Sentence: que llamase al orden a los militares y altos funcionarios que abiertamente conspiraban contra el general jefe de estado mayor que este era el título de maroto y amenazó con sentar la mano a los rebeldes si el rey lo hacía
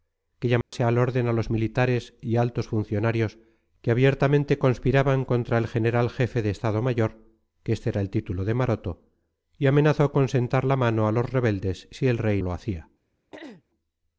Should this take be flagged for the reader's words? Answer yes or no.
no